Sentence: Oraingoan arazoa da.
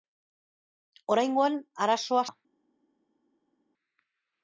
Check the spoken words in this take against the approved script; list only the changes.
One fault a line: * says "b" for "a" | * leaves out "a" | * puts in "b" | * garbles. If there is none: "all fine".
all fine